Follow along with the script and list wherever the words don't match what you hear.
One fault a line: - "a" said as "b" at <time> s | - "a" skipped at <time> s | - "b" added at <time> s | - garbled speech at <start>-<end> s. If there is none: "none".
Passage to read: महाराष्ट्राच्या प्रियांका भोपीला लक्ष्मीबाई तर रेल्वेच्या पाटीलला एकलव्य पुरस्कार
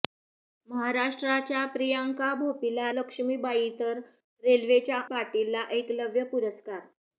none